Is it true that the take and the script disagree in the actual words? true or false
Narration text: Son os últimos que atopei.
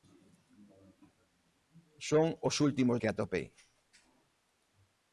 false